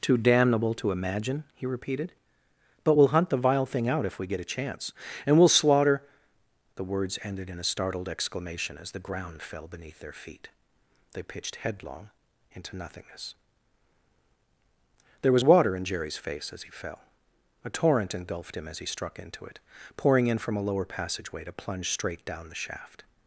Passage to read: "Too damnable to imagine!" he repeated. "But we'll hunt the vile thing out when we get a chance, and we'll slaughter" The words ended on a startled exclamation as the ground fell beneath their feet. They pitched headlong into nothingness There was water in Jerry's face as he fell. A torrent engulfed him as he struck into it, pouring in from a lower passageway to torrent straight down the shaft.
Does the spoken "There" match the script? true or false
true